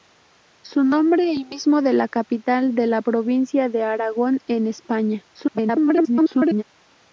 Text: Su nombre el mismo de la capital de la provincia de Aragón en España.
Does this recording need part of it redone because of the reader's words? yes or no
yes